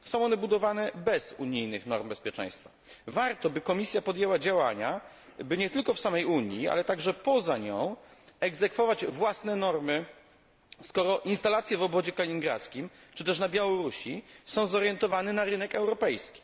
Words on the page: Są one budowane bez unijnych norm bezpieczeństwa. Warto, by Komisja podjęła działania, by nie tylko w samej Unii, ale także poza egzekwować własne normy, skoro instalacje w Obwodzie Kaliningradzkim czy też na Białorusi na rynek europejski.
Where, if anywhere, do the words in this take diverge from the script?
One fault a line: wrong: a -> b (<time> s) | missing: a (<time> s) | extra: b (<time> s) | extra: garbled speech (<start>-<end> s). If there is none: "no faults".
extra: nią (7.6 s)
extra: są zorientowane (14.4 s)